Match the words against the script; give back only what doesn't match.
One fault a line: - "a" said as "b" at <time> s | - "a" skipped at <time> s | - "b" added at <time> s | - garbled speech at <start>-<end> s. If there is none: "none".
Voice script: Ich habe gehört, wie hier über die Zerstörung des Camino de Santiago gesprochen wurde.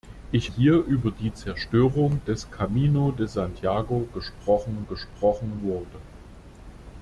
- "habe gehört wie" skipped at 0.5 s
- "gesprochen" added at 4.9 s